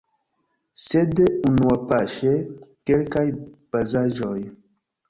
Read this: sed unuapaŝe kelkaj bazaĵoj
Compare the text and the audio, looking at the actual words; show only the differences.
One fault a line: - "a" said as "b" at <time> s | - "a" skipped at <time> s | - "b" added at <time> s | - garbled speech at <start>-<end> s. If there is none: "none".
none